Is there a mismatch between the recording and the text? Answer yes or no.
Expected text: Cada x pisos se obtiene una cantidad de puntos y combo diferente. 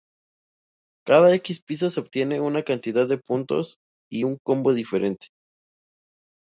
yes